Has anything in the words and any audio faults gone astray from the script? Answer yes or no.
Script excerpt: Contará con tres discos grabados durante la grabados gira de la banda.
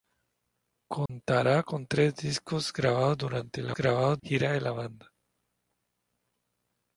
yes